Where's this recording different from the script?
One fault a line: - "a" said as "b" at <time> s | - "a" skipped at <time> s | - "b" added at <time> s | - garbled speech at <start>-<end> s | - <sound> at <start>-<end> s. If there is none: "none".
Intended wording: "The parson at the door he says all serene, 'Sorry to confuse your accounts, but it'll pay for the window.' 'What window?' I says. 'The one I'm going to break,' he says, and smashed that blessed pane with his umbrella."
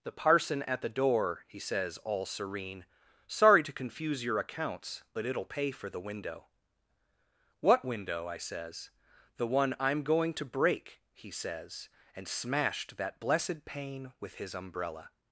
none